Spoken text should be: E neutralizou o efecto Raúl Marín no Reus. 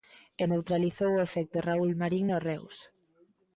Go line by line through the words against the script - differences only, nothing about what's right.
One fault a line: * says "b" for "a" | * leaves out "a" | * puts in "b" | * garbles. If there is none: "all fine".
all fine